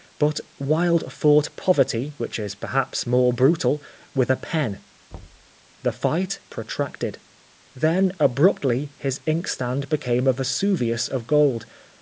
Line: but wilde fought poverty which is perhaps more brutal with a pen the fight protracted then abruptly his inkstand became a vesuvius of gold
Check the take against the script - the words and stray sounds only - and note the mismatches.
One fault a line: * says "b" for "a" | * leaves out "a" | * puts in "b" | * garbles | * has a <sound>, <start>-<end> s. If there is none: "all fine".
* has a thud, 5.1-5.5 s